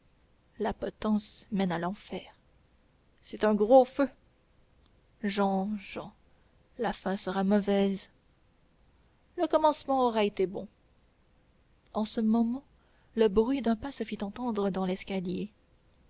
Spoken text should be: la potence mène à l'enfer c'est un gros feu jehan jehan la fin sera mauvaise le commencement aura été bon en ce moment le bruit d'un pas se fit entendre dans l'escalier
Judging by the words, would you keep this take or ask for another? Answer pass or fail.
pass